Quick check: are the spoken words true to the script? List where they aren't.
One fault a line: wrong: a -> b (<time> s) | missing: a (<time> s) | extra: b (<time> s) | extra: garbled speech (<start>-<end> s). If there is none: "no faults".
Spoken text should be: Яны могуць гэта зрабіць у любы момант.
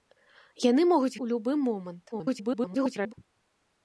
missing: гэта зрабіць (1.2 s)
extra: garbled speech (2.1-3.1 s)